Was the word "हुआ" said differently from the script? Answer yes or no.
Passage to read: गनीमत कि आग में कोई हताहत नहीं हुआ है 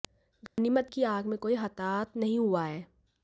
no